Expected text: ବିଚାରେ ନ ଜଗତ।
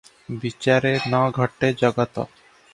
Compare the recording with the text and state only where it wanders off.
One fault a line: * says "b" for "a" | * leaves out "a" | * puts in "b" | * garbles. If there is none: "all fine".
* puts in "ଘଟେ"